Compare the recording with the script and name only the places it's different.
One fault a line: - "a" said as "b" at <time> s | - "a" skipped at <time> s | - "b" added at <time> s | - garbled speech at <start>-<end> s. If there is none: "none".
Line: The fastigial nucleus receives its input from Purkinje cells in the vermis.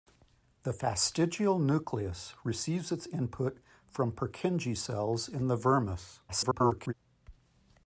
- garbled speech at 6.3-6.9 s